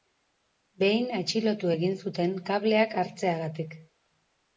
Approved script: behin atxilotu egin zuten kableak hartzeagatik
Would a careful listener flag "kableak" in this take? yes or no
no